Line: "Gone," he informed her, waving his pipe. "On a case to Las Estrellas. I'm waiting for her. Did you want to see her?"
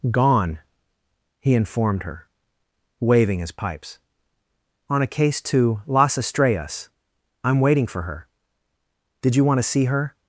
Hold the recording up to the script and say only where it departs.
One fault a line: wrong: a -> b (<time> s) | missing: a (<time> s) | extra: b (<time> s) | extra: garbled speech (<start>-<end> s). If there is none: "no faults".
wrong: pipe -> pipes (3.5 s)